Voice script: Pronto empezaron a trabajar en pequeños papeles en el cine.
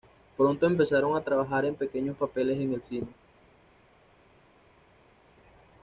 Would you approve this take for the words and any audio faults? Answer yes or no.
yes